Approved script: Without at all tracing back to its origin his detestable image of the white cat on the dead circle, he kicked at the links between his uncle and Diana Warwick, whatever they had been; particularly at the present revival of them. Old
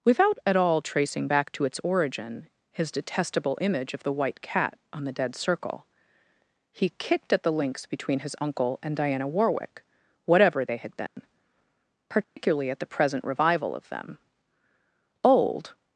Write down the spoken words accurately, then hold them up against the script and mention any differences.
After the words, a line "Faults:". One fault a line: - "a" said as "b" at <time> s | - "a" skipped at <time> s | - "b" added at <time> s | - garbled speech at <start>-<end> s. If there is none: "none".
Without at all tracing back to its origin his detestable image of the white cat on the dead circle, he kicked at the links between his uncle and Diana Warwick, whatever they had been; particularly at the present revival of them. Old
Faults:
none